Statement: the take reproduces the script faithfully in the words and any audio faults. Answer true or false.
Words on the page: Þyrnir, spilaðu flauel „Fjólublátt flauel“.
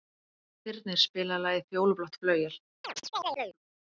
false